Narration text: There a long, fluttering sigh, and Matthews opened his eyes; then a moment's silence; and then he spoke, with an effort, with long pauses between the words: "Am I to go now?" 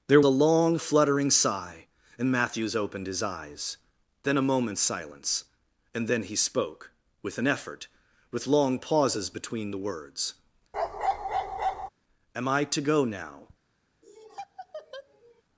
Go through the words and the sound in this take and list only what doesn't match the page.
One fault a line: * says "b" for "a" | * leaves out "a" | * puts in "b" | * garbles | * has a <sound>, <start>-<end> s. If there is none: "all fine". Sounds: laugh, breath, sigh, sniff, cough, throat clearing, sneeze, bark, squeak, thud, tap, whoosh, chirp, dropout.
* has a bark, 10.7-11.9 s
* has a laugh, 14.0-15.4 s